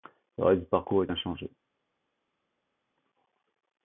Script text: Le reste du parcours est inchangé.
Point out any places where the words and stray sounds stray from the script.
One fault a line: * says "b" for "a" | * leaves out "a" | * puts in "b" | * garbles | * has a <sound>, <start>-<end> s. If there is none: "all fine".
all fine